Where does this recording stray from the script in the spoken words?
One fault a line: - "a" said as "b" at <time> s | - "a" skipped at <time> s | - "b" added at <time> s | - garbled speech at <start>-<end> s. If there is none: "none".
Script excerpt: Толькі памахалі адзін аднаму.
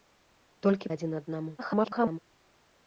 - "памахалі" skipped at 0.9 s
- garbled speech at 1.6-2.2 s